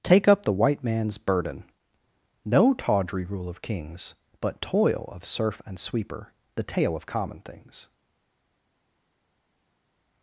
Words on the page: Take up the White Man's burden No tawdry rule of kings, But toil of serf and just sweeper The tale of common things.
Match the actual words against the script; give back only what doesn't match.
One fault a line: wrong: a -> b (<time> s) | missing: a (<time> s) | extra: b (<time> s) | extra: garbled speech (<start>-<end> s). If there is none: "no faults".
missing: just (5.8 s)